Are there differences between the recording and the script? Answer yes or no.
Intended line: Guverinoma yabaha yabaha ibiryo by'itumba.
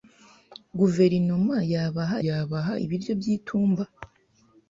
no